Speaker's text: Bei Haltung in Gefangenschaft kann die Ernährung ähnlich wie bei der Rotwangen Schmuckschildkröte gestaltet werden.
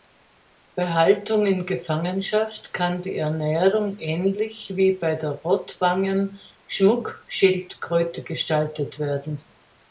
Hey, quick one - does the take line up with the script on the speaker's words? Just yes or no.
yes